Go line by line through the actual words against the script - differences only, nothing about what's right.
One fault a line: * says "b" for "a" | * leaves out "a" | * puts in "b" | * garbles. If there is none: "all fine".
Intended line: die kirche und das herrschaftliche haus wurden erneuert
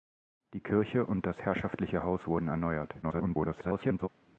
* garbles